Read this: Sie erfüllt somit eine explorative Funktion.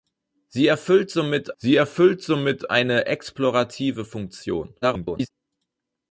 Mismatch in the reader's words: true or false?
true